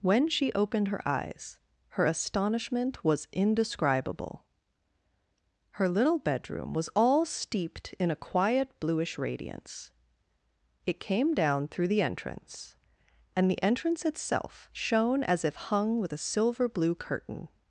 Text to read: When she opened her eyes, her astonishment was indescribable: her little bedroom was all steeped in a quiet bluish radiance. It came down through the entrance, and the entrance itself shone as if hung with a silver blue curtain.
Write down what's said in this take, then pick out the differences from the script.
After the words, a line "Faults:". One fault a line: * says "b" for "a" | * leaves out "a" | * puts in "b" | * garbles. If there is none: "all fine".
When she opened her eyes, her astonishment was indescribable: her little bedroom was all steeped in a quiet bluish radiance. It came down through the entrance, and the entrance itself shone as if hung with a silver blue curtain.
Faults:
all fine